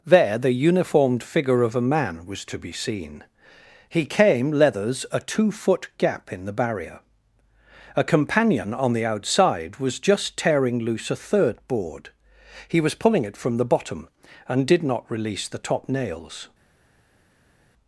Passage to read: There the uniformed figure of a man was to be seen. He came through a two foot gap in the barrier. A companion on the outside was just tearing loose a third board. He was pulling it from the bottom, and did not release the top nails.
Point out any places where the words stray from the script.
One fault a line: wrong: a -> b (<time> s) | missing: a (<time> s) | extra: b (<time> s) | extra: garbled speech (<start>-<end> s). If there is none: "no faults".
wrong: through -> leathers (4.5 s)